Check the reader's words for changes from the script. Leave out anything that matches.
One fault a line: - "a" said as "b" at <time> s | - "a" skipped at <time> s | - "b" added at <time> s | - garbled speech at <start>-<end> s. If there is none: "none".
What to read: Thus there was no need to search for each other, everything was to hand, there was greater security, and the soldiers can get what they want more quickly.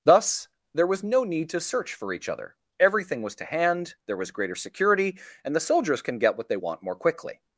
none